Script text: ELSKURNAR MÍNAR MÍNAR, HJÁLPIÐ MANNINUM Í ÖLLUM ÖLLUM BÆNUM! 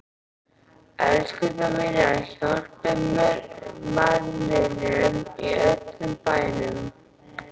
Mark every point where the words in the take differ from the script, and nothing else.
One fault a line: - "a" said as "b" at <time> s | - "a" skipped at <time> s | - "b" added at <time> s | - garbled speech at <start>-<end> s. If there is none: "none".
- "MÍNAR" skipped at 2.1 s
- "ÖLLUM" skipped at 6.1 s